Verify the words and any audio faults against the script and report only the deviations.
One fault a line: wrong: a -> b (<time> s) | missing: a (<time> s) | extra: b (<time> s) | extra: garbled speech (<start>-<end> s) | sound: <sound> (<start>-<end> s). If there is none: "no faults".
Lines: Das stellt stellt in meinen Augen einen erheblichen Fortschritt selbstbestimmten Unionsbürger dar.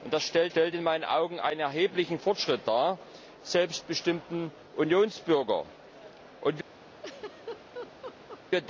sound: laugh (6.9-8.4 s)